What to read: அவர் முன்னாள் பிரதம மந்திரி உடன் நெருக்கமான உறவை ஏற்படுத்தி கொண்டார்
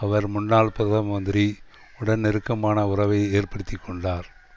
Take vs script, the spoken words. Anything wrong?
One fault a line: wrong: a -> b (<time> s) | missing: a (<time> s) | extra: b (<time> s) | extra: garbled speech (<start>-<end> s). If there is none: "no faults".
no faults